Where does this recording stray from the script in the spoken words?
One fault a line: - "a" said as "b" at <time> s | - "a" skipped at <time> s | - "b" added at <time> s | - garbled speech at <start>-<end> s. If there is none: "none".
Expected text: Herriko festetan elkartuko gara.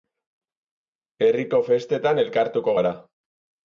none